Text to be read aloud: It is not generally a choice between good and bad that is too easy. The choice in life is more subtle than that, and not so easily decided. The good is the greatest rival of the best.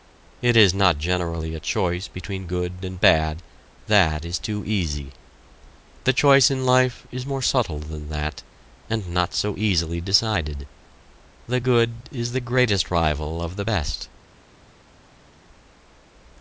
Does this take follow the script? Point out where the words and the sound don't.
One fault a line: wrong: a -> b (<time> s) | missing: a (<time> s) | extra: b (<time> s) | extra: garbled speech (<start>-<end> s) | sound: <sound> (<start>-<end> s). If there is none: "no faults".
no faults